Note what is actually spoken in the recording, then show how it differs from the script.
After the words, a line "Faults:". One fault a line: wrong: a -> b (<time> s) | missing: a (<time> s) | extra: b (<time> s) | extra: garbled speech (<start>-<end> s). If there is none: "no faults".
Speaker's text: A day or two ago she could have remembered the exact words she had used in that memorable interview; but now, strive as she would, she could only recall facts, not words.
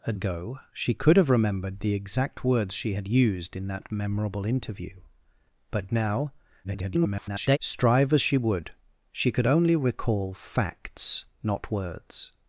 A ago she could have remembered the exact words she had used in that memorable interview; but now, [garbled] strive as she would, she could only recall facts, not words.
Faults:
missing: day or two (0.1 s)
extra: garbled speech (6.6-7.6 s)